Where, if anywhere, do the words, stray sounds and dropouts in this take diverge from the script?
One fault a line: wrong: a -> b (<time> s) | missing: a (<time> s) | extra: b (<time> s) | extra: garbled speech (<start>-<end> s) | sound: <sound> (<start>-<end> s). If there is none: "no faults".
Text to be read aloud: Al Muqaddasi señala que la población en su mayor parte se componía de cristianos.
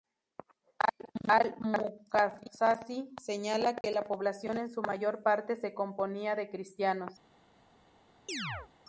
sound: dropout (3.8-3.8 s)
sound: chirp (8.3-8.7 s)